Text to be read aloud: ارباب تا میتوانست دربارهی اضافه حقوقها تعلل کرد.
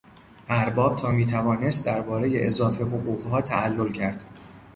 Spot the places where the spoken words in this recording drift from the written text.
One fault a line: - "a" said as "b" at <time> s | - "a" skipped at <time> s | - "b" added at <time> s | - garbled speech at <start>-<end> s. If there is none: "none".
none